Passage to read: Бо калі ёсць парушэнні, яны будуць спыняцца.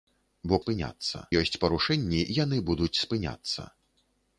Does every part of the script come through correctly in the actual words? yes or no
no